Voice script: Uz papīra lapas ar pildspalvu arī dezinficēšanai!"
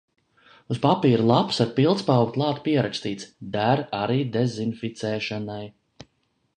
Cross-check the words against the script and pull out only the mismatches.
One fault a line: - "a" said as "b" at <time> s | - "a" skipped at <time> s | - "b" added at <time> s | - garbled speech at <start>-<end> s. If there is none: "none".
- "klāt pierakstīts Der" added at 2.4 s